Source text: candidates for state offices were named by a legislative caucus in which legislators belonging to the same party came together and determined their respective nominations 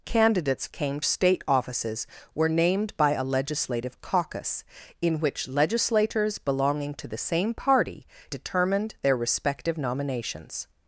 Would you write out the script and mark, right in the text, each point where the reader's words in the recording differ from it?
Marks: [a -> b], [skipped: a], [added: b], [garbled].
candidates [for -> came] state offices were named by a legislative caucus in which legislators belonging to the same party [skipped: came together and] determined their respective nominations